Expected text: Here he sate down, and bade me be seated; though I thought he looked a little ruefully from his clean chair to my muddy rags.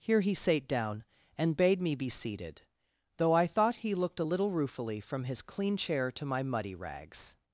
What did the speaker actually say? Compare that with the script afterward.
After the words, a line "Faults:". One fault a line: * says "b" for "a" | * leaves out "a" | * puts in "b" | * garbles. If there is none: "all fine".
Here he sate down, and bade me be seated; though I thought he looked a little ruefully from his clean chair to my muddy rags.
Faults:
all fine